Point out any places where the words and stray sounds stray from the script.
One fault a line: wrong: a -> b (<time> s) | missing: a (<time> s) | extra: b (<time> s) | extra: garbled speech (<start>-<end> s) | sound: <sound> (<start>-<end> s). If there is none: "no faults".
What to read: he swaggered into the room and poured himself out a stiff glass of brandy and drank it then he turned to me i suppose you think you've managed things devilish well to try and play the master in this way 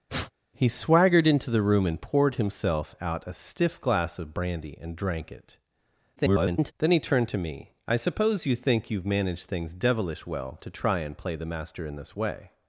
sound: sniff (0.1-0.3 s)
extra: garbled speech (6.2-6.7 s)